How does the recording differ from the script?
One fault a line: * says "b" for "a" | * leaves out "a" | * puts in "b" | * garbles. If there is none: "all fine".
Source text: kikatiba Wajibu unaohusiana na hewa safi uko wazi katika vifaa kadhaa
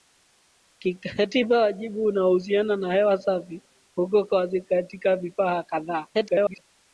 * garbles